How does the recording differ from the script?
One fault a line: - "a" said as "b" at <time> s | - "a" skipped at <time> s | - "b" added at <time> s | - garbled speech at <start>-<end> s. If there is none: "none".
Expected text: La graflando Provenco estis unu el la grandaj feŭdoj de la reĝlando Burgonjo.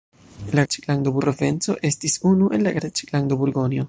- "graflando" said as "reĝlando" at 0.6 s
- "grandaj feŭdoj de" skipped at 2.8 s